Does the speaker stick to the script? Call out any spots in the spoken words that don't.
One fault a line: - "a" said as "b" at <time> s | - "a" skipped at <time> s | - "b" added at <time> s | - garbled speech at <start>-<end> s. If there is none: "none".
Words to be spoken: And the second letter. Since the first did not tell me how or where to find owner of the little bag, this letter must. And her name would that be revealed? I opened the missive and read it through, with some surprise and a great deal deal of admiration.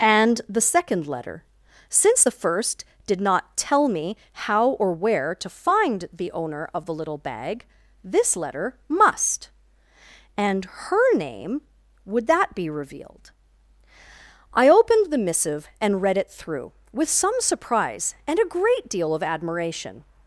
- "the" added at 6.1 s
- "deal" skipped at 19.2 s